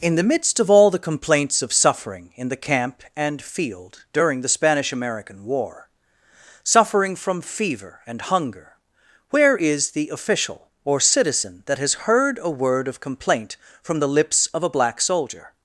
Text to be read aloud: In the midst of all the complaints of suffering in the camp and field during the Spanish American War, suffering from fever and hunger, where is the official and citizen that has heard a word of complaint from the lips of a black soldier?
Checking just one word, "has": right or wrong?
right